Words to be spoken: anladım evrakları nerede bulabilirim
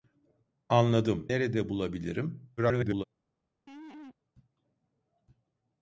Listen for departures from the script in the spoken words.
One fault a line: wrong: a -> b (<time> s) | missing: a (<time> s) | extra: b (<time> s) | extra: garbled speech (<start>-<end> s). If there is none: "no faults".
missing: evrakları (1.3 s)
extra: garbled speech (2.6-3.0 s)